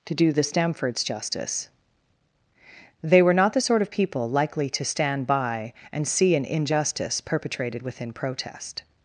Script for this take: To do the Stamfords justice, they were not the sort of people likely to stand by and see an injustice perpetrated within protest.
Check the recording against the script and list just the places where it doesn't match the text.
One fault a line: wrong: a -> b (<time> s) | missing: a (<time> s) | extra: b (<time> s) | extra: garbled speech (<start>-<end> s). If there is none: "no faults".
no faults